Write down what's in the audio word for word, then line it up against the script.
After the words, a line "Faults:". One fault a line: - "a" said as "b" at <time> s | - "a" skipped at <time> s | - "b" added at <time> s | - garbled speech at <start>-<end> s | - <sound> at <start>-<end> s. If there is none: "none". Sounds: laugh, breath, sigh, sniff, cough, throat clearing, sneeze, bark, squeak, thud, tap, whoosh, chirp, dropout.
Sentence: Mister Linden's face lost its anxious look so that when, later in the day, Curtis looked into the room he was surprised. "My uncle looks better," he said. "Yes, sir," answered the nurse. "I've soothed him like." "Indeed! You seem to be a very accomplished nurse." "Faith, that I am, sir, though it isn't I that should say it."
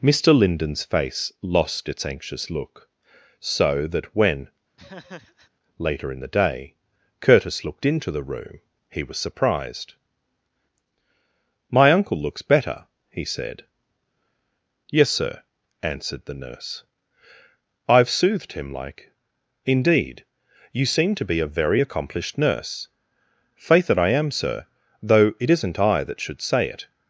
Mister Linden's face lost its anxious look so that when, later in the day, Curtis looked into the room he was surprised. "My uncle looks better," he said. "Yes, sir," answered the nurse. "I've soothed him like." "Indeed! You seem to be a very accomplished nurse." "Faith, that I am, sir, though it isn't I that should say it."
Faults:
- laugh at 4.8-5.5 s